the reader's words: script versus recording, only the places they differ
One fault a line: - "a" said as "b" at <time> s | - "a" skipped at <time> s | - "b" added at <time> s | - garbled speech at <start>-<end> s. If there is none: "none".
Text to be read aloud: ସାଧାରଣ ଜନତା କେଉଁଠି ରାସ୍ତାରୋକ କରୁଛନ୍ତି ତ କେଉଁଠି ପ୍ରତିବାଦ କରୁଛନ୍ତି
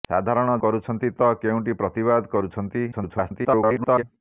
- "ଜନତା କେଉଁଠି ରାସ୍ତାରୋକ" skipped at 0.5 s
- garbled speech at 2.9-4.0 s